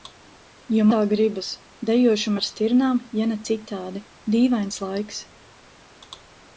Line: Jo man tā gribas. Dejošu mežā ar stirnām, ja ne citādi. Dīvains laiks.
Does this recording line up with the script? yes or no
no